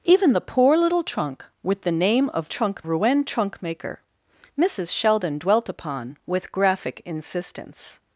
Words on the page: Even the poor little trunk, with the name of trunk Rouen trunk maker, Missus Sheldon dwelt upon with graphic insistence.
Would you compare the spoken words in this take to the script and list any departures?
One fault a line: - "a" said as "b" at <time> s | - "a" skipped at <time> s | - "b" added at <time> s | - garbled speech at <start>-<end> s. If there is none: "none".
none